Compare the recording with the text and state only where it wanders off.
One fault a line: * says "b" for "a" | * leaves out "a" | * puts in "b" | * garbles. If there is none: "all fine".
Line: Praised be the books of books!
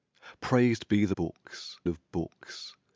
all fine